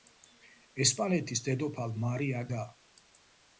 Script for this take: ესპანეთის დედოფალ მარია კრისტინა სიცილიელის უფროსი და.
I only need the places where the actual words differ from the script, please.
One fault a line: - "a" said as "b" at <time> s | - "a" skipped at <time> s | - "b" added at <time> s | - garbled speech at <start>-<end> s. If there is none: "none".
- "კრისტინა სიცილიელის უფროსი" skipped at 2.4 s